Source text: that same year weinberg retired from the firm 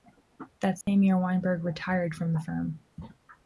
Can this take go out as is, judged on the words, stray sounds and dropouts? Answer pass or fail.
fail